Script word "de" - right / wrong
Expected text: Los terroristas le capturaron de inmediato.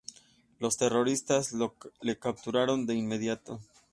right